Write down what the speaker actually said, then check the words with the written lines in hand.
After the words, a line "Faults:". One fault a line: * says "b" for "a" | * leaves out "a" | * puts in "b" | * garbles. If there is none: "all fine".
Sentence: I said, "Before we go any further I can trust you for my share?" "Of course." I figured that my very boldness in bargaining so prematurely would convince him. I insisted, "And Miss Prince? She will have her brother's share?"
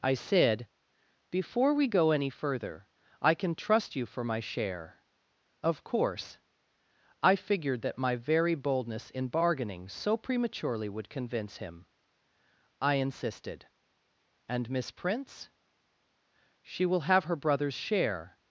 I said, "Before we go any further I can trust you for my share?" "Of course." I figured that my very boldness in bargaining so prematurely would convince him. I insisted, "And Miss Prince? She will have her brother's share?"
Faults:
all fine